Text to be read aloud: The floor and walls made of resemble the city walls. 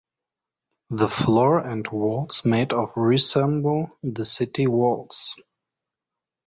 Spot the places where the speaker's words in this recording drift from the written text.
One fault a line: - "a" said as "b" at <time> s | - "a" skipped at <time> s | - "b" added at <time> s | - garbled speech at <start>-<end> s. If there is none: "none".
none